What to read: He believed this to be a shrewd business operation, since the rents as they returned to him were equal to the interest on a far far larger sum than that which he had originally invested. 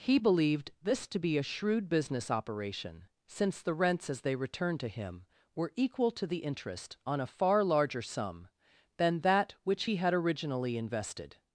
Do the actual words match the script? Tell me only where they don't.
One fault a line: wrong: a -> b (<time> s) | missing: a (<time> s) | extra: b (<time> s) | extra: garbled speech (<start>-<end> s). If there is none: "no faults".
missing: far (7.6 s)